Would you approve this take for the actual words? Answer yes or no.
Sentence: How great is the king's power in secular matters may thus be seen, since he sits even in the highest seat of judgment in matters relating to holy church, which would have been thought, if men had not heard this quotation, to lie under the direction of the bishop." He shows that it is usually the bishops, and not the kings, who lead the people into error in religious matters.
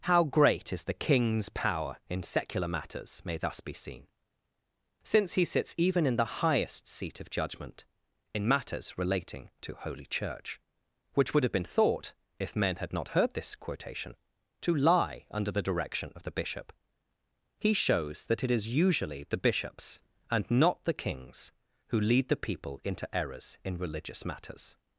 no